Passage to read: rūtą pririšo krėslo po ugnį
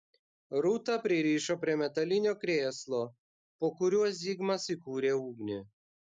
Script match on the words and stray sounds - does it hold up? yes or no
no